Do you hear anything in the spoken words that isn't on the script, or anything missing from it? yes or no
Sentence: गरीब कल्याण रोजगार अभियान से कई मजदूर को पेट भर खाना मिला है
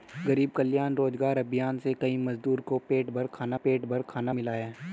yes